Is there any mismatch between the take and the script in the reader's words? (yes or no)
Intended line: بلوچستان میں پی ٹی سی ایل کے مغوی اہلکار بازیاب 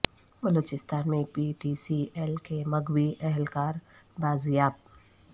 no